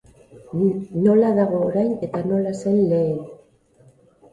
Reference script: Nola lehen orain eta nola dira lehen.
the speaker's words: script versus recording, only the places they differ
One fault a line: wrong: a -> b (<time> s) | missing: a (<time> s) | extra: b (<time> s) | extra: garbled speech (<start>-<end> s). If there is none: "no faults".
wrong: lehen -> dago (1.4 s)
wrong: dira -> zen (2.6 s)